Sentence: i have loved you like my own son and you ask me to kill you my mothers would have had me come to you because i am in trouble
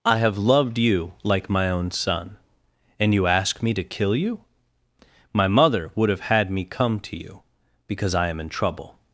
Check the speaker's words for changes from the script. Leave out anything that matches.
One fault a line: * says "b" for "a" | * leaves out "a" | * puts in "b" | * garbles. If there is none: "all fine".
* says "mother" for "mothers"